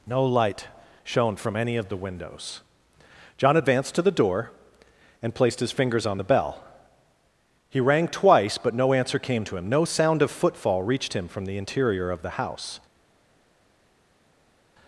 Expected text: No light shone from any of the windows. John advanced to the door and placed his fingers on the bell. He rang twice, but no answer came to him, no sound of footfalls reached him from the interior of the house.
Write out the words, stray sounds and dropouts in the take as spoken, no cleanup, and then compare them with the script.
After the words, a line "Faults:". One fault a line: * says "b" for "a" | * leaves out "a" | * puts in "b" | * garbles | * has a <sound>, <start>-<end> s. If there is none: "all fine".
No light shone from any of the windows. John advanced to the door and placed his fingers on the bell. He rang twice, but no answer came to him, no sound of footfall reached him from the interior of the house.
Faults:
* says "footfall" for "footfalls"